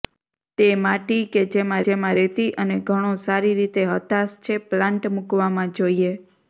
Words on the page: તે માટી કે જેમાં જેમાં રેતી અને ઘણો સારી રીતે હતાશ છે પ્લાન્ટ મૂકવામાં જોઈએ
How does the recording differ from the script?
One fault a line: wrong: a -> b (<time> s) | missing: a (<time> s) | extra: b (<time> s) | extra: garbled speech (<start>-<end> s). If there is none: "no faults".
no faults